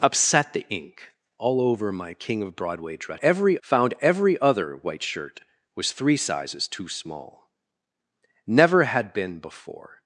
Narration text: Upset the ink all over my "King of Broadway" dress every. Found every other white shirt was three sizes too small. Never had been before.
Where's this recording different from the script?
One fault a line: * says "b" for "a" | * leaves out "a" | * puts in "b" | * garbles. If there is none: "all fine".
all fine